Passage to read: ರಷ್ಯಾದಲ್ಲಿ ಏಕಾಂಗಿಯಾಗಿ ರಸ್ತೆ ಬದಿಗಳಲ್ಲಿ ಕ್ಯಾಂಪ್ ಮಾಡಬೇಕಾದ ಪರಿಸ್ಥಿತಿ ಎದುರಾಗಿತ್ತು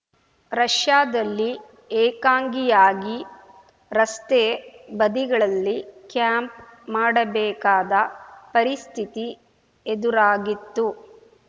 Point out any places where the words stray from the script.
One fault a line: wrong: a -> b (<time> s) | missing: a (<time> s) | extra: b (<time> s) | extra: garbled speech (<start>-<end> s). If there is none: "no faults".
no faults